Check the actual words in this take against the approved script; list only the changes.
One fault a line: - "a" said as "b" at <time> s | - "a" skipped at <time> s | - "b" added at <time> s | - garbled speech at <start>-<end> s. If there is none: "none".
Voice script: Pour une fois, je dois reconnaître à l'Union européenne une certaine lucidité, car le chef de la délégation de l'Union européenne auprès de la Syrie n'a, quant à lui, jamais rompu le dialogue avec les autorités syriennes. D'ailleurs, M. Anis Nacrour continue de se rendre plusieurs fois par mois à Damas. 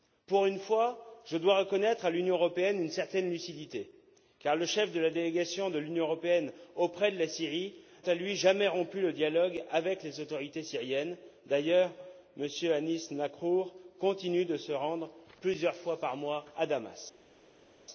- "n'a quant" skipped at 7.8 s